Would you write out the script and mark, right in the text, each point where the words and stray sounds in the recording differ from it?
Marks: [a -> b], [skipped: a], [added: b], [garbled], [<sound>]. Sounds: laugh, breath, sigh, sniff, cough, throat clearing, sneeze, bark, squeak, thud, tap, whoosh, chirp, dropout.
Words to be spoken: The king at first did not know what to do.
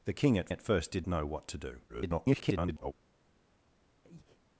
The king at [added: at] first did [skipped: not] know what to do. [garbled] [breath]